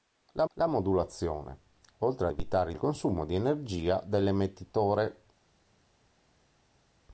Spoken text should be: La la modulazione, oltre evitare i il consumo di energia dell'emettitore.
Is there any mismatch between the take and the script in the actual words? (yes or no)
no